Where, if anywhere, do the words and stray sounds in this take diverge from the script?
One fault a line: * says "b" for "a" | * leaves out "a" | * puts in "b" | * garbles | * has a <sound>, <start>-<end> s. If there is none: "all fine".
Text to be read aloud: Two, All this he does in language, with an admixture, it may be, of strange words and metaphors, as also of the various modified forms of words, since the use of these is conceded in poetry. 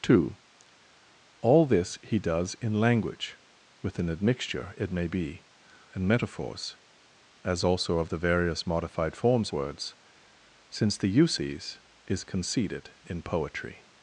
* leaves out "of strange words"
* leaves out "of"
* leaves out "of"